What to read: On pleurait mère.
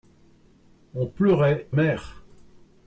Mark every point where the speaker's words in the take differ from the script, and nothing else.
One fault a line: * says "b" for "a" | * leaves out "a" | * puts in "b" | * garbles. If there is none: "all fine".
all fine